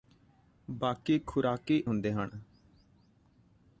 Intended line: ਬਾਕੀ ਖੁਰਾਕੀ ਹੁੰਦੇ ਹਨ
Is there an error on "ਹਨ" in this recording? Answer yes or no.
no